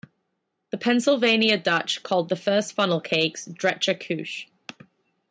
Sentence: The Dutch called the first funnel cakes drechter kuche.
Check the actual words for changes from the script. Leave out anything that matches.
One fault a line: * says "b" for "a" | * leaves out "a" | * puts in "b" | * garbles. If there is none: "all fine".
* puts in "Pennsylvania"